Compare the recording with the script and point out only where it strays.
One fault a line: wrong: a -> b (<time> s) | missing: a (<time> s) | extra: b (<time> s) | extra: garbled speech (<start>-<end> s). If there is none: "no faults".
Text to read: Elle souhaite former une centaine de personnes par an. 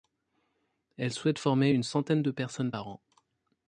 no faults